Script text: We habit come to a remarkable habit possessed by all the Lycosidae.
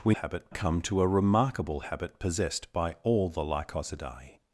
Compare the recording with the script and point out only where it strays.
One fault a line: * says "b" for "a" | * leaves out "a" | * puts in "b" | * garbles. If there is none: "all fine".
all fine